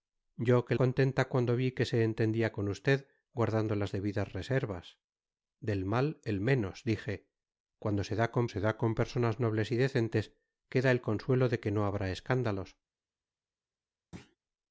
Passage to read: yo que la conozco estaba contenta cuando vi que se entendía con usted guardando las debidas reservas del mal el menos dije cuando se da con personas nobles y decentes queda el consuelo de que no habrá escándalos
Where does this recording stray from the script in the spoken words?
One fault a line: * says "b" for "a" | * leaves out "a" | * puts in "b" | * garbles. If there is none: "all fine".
* leaves out "la conozco estaba"
* puts in "se da con"